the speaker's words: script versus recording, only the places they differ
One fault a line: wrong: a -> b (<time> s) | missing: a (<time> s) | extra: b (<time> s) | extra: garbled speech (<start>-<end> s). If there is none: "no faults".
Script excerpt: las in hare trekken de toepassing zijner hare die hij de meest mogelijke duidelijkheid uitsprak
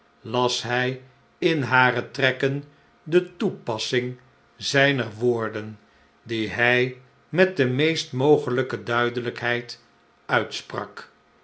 extra: hij (0.6 s)
wrong: hare -> woorden (5.2 s)
extra: met (7.3 s)